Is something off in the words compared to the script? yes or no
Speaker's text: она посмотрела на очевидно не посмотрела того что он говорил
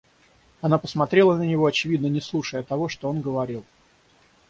yes